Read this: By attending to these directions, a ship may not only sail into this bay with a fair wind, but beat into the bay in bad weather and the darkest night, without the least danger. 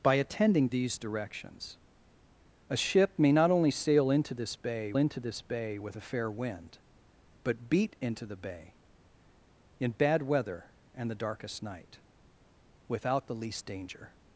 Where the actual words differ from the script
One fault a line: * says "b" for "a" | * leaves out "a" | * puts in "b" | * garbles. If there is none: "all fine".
* leaves out "to"
* puts in "into this bay"